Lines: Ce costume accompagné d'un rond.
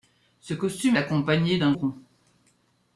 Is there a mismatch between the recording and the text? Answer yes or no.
no